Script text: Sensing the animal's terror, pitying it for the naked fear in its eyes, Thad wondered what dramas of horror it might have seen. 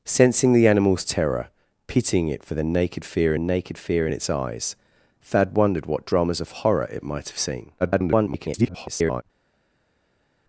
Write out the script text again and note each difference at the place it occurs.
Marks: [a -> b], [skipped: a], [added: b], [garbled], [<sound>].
Sensing the animal's terror, pitying it for the naked fear [added: naked fear] in its eyes, Thad wondered what dramas of horror it might have seen. [garbled]